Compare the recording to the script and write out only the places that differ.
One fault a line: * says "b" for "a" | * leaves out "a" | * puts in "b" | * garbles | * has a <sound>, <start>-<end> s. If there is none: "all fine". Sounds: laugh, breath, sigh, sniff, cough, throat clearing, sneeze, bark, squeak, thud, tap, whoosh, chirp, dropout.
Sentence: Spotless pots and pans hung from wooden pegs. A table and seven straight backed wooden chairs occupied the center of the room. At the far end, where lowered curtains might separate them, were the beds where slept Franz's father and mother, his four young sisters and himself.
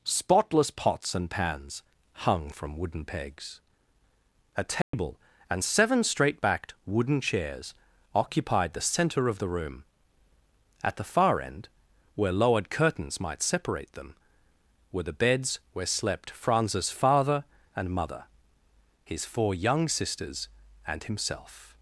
* has a dropout, 4.8-4.9 s